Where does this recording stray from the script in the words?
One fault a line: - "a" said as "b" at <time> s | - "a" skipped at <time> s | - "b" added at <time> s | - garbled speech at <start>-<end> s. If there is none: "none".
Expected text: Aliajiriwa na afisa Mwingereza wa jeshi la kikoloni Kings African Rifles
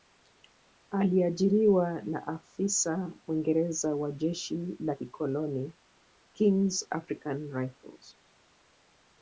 none